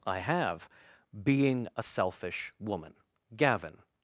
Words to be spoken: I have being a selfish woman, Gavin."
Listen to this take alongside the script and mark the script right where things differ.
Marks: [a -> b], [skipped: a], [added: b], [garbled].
I have being a selfish woman, Gavin."